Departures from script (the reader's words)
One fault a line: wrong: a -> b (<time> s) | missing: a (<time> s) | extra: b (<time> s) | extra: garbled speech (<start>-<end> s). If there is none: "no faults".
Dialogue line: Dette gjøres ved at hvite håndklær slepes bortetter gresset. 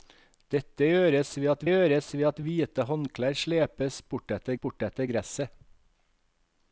extra: gjøres ved at (1.7 s)
extra: bortetter (4.6 s)